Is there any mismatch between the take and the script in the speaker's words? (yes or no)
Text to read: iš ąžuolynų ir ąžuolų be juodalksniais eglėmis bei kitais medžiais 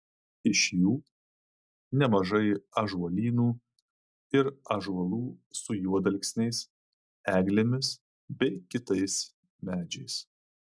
yes